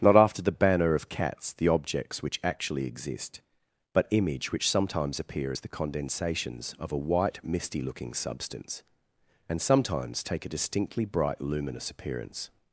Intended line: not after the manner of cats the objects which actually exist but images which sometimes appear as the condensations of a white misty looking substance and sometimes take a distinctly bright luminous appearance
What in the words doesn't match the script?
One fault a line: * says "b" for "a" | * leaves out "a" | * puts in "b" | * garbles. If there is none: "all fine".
* says "banner" for "manner"
* says "image" for "images"